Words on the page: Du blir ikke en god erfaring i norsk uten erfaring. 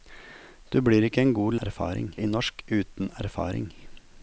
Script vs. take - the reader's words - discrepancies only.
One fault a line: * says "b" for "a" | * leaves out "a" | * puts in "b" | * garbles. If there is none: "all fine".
all fine